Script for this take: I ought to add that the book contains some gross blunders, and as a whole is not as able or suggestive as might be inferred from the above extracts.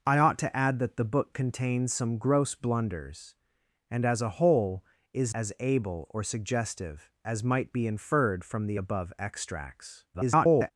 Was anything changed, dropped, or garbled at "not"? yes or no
yes